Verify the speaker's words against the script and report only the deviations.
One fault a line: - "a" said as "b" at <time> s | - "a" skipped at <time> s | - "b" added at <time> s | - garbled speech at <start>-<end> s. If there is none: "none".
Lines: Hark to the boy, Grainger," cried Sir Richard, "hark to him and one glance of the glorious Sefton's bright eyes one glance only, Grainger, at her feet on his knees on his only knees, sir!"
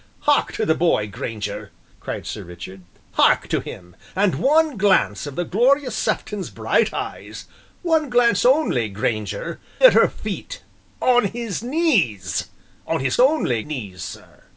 none